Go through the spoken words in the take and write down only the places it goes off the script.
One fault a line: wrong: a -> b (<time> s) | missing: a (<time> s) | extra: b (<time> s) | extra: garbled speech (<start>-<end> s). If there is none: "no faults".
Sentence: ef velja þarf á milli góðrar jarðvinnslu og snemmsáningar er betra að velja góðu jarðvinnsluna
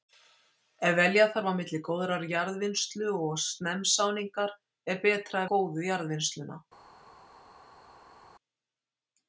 missing: að velja (5.5 s)